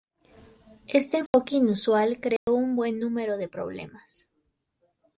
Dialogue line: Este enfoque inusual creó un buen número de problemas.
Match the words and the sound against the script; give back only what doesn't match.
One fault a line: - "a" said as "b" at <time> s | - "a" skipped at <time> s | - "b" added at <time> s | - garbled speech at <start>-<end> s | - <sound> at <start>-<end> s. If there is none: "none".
- dropout at 1.3-1.3 s
- dropout at 2.4-2.5 s